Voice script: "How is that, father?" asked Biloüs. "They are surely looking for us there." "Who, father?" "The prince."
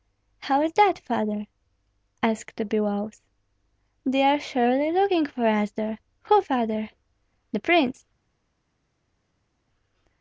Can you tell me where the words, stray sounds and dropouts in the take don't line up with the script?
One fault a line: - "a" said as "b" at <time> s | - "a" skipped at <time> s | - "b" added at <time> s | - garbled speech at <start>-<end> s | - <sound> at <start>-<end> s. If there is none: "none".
none